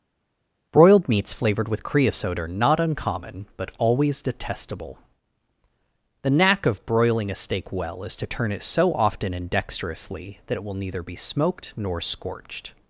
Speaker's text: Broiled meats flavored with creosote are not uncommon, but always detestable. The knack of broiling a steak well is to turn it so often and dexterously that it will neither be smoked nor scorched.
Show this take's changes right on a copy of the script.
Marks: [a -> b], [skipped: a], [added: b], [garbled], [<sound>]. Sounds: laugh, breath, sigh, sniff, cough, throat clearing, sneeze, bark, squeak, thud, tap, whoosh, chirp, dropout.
Broiled meats flavored with creosote are not uncommon, but always detestable. The knack of broiling a steak well is to turn it so often and dexterously that it will neither be smoked nor scorched.